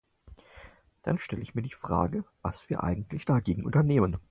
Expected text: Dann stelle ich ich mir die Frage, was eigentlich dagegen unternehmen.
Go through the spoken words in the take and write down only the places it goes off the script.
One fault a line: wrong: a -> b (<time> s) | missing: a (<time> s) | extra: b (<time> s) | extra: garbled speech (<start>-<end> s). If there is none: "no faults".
missing: ich (1.6 s)
extra: wir (2.7 s)